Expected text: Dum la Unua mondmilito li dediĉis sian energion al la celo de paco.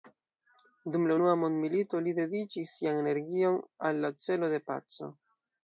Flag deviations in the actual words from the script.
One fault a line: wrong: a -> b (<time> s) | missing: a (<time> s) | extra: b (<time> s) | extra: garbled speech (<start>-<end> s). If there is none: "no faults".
no faults